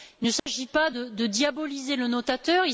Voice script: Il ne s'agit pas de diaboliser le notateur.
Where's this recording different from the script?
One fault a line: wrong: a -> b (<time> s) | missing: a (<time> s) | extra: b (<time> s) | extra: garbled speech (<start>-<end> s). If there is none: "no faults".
no faults